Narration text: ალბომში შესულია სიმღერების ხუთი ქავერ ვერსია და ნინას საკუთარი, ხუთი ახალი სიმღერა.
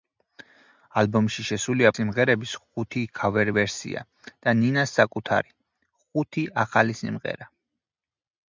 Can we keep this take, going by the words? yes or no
yes